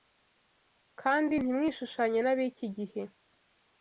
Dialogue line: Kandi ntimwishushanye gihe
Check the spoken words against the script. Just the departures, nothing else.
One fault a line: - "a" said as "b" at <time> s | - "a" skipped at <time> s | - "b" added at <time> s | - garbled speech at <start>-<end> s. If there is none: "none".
- "n'ab'iki" added at 2.2 s